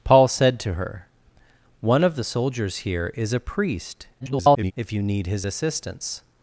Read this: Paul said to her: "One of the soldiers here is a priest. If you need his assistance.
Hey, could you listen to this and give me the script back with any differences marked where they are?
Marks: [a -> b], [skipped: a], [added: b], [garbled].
Paul said to her: "One of the soldiers here is a priest. [garbled] If you need his assistance.